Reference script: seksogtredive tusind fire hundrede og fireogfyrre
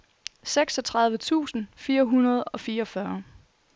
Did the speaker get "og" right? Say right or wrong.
right